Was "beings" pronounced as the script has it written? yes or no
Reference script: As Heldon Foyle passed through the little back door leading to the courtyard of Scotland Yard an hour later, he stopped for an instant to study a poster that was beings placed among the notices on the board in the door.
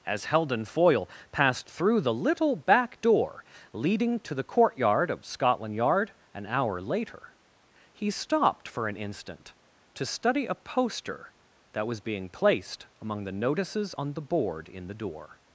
no